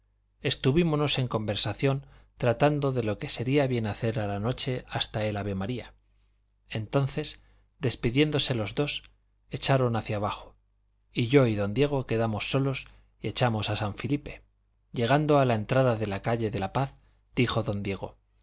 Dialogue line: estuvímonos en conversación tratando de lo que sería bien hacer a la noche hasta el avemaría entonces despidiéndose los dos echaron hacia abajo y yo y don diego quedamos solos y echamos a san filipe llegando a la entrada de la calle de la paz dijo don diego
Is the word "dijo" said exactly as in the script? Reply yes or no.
yes